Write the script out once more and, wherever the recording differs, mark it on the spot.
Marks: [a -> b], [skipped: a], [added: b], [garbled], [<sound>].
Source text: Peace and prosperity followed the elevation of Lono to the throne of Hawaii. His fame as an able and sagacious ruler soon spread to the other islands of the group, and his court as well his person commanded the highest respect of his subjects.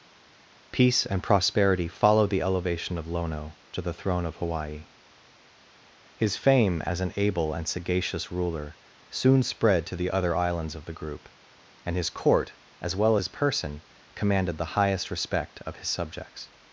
Peace and prosperity followed the elevation of Lono to the throne of Hawaii. His fame as an able and sagacious ruler soon spread to the other islands of the group, and his court as well his person commanded the highest respect of his subjects.